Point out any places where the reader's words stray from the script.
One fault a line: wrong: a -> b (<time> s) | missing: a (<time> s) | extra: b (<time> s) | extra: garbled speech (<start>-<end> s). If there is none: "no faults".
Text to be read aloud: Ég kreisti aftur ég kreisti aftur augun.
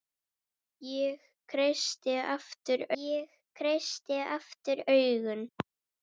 no faults